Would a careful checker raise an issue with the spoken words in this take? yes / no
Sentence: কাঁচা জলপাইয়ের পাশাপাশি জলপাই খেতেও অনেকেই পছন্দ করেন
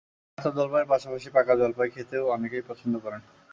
yes